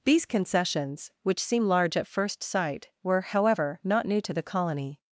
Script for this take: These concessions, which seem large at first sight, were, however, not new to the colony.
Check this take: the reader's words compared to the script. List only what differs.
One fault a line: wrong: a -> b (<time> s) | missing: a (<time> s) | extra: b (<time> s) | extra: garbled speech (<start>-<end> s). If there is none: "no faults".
no faults